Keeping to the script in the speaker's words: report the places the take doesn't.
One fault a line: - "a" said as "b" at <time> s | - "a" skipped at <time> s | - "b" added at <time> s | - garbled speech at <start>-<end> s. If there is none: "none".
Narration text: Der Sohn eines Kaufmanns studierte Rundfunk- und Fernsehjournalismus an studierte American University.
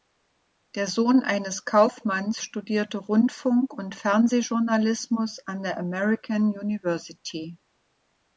- "studierte" said as "der" at 5.6 s